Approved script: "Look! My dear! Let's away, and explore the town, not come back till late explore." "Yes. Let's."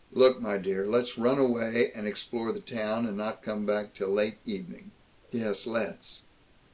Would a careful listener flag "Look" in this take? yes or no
no